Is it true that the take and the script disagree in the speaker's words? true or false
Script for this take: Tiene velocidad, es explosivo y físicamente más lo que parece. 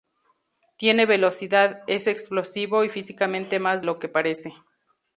false